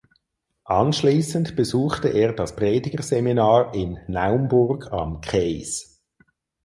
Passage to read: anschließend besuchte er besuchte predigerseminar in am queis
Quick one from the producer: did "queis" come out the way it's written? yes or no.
yes